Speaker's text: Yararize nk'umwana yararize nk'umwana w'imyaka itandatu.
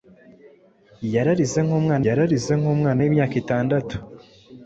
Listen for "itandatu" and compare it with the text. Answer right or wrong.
right